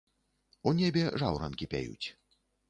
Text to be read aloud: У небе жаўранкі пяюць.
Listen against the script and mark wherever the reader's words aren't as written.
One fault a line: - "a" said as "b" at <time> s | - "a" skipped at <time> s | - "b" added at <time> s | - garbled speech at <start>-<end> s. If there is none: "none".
none